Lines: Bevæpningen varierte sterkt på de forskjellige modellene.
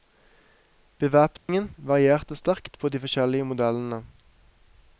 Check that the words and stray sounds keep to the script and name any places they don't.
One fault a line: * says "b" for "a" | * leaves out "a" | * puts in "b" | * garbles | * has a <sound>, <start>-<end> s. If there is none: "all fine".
* has a dropout, 1.4-1.5 s